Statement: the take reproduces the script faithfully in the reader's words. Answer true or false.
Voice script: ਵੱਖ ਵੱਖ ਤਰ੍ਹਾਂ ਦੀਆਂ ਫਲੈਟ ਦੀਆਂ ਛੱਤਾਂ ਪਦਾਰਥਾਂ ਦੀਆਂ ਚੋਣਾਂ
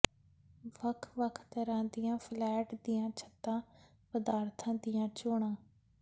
true